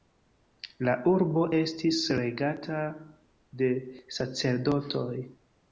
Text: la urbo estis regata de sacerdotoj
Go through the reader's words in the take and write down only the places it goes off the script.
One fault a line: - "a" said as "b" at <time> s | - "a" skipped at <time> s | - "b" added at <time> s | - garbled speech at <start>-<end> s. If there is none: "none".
none